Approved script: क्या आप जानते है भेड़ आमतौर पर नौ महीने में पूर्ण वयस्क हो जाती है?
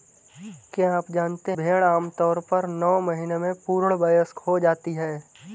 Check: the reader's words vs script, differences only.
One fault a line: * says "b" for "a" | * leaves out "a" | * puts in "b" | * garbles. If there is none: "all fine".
* leaves out "है"